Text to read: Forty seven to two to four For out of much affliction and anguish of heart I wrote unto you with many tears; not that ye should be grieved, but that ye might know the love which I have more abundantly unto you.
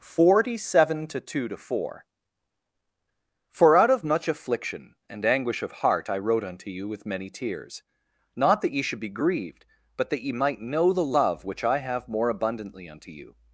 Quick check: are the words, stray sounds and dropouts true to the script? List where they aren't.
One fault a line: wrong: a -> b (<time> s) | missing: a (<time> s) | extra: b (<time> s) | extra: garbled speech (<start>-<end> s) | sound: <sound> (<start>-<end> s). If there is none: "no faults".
no faults